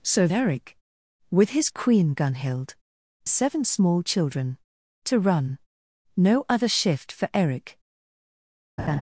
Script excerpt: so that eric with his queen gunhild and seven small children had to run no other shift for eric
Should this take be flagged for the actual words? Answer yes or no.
yes